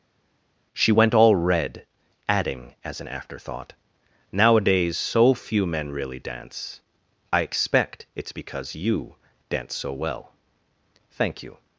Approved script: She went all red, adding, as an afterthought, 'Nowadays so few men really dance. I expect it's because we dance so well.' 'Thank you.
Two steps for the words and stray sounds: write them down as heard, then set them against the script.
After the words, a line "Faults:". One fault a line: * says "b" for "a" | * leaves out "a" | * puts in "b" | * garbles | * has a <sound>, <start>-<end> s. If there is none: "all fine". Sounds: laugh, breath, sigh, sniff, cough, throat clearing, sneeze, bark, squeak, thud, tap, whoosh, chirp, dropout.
She went all red, adding, as an afterthought, 'Nowadays so few men really dance. I expect it's because you dance so well.' 'Thank you.
Faults:
* says "you" for "we"